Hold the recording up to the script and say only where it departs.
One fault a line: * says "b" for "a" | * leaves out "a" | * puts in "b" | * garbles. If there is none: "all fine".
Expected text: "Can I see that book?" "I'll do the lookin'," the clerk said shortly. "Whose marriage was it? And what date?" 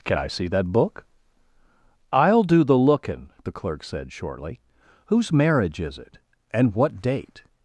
* says "is" for "was"